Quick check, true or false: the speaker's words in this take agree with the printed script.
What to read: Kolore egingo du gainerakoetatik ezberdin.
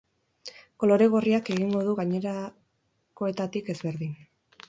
false